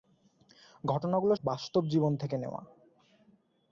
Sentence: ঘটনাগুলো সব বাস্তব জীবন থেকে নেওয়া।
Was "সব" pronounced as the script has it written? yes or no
no